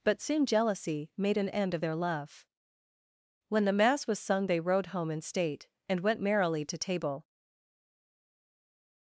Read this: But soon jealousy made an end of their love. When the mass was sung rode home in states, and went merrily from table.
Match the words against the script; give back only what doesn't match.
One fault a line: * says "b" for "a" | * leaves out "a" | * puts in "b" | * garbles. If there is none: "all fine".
* puts in "they"
* says "state" for "states"
* says "to" for "from"